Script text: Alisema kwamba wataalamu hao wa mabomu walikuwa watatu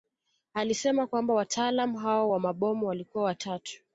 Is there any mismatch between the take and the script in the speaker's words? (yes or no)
no